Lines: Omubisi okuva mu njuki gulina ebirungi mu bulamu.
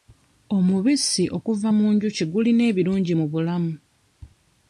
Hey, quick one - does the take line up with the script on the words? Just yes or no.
yes